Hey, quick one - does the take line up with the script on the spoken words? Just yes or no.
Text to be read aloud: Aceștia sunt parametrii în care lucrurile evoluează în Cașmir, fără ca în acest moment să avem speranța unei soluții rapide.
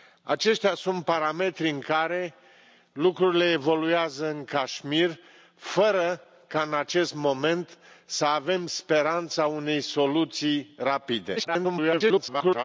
no